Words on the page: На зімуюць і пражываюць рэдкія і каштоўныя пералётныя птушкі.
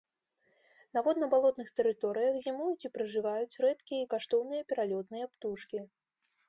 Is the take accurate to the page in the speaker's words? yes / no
no